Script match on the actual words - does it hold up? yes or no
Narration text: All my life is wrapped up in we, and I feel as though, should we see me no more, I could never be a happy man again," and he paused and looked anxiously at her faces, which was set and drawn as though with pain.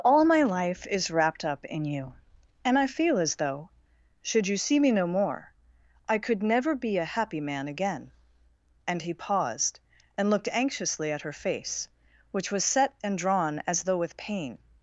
no